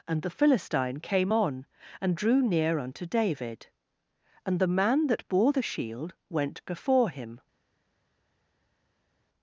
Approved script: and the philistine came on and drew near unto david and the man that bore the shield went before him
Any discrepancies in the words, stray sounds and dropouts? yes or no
no